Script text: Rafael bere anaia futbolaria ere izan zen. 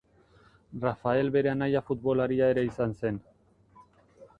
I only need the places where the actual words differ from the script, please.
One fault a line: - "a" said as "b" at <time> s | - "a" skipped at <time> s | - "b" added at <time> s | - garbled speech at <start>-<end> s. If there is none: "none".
none